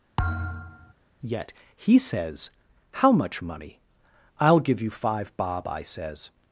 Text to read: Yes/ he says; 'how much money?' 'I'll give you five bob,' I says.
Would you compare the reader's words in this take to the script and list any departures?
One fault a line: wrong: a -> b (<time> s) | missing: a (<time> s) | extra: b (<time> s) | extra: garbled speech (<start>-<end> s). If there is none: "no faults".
wrong: Yes -> Yet (1.2 s)